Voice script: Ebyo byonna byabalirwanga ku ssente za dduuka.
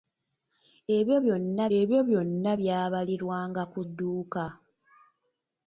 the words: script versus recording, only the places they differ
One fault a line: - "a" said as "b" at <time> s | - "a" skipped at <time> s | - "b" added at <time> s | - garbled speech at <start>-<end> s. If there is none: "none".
- "ebyo byonna" added at 1.8 s
- "ssente za" skipped at 3.8 s